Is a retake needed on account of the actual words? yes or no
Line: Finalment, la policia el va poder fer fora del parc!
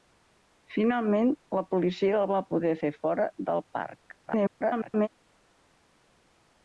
yes